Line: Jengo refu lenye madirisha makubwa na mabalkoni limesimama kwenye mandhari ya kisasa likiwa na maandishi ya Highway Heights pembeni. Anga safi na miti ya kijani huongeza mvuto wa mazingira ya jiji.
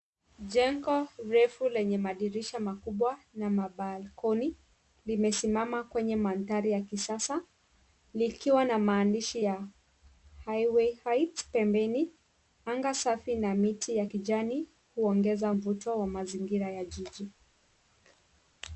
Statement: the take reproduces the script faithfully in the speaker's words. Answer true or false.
true